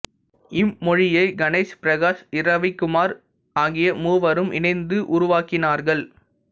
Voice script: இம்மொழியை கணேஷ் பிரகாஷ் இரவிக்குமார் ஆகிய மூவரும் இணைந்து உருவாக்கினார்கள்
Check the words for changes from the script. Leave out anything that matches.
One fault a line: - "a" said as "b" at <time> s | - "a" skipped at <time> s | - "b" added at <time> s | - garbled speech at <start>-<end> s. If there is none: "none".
none